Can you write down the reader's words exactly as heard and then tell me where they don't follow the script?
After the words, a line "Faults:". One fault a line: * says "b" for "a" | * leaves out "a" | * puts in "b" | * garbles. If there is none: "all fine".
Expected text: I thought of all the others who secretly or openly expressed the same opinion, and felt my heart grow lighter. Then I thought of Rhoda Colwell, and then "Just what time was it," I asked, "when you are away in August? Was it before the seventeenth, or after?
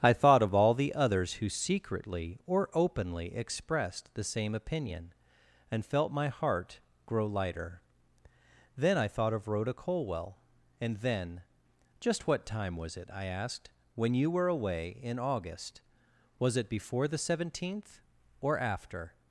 I thought of all the others who secretly or openly expressed the same opinion, and felt my heart grow lighter. Then I thought of Rhoda Colwell, and then "Just what time was it," I asked, "when you were away in August? Was it before the seventeenth, or after?
Faults:
* says "were" for "are"